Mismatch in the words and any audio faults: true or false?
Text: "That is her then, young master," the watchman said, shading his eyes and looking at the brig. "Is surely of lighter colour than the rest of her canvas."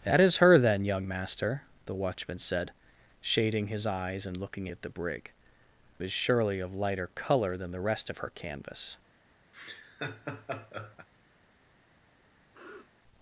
true